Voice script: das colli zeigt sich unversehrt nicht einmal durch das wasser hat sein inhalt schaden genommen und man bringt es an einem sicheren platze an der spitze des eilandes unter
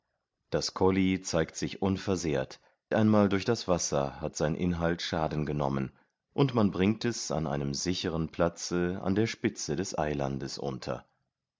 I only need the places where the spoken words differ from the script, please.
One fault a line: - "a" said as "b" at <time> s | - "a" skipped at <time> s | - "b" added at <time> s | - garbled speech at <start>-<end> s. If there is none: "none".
- "nicht" skipped at 2.6 s